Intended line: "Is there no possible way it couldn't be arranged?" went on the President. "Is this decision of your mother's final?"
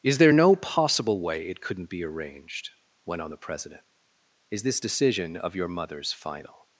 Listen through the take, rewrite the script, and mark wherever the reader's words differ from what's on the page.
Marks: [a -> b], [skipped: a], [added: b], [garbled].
"Is there no possible way it couldn't be arranged?" went on the President. "Is this decision of your mother's final?"